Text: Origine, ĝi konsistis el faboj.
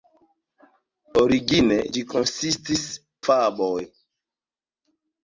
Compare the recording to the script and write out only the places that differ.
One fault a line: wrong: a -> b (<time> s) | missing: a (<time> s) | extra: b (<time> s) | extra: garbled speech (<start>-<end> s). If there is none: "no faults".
missing: el (2.8 s)